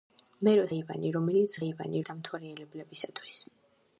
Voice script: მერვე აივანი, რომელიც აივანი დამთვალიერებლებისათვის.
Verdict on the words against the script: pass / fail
pass